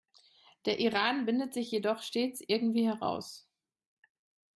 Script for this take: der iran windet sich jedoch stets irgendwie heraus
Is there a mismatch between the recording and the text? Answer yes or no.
no